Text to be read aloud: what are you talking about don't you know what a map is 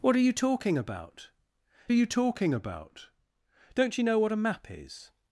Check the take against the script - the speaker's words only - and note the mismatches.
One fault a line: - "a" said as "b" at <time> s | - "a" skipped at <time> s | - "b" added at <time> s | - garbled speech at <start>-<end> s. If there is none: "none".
- "you talking about" added at 1.9 s